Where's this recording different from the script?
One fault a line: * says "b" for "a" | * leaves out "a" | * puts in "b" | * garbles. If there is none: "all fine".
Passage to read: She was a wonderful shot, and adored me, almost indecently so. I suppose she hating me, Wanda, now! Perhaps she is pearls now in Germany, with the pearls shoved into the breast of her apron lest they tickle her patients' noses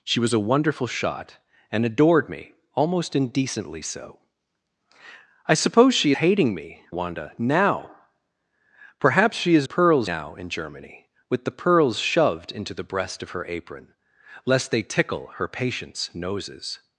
all fine